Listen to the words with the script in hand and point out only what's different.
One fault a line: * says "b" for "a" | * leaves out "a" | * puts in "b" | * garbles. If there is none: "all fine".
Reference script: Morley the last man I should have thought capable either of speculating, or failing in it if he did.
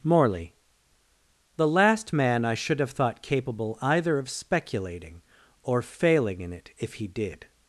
all fine